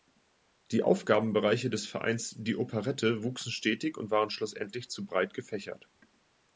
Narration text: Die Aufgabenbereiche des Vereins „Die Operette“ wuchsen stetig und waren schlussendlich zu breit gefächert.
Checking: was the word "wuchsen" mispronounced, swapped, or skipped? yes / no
no